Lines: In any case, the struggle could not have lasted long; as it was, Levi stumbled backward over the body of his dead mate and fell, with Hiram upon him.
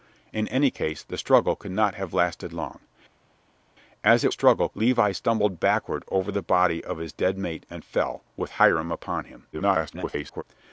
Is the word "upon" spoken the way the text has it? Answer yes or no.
yes